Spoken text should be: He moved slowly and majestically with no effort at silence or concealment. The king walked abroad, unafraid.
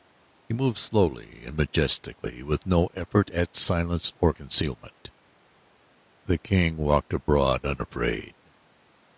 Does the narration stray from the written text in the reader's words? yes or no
no